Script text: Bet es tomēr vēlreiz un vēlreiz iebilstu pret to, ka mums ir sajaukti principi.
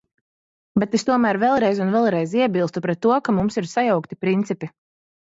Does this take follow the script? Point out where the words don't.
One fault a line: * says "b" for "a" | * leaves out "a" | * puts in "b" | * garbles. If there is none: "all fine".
all fine